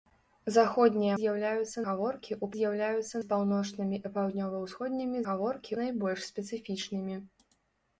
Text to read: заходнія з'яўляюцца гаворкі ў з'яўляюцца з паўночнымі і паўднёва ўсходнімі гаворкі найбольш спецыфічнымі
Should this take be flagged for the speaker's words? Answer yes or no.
no